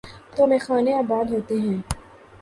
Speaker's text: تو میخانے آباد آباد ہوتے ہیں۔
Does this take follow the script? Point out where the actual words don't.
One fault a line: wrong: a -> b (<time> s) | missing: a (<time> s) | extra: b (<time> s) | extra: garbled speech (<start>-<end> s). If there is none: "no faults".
missing: آباد (1.3 s)